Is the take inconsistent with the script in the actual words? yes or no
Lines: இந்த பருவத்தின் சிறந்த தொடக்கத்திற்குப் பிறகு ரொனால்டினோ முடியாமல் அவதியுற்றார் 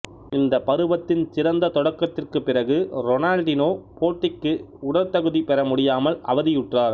yes